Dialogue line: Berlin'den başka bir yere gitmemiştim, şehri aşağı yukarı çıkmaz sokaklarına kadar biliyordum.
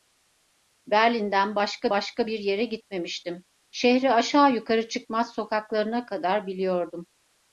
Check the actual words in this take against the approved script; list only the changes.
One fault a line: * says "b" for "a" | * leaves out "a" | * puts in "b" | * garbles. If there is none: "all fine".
* puts in "başka"